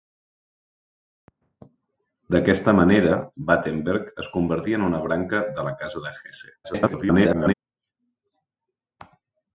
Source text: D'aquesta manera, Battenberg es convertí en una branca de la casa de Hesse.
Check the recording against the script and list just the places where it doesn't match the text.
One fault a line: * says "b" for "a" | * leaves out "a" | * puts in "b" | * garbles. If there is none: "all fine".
* garbles